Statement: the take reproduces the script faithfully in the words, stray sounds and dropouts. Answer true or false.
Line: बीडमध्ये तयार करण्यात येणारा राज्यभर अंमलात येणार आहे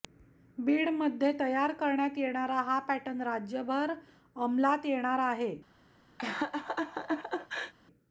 false